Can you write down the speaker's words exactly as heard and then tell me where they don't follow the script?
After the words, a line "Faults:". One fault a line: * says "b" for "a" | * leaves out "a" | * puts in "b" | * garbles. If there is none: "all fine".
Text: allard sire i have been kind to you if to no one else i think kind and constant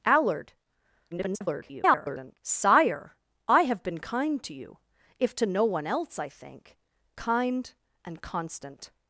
allard [garbled] sire i have been kind to you if to no one else i think kind and constant
Faults:
* garbles